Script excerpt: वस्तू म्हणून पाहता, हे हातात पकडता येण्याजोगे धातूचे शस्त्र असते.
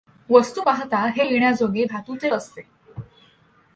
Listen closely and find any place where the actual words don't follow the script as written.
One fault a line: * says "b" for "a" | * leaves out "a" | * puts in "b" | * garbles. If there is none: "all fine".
* leaves out "म्हणून"
* leaves out "हातात पकडता"
* leaves out "शस्त्र"